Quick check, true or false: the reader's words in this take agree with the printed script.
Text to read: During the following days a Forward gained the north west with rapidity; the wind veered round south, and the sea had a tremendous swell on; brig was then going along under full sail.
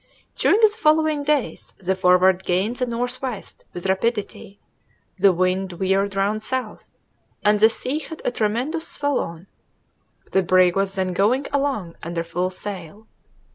false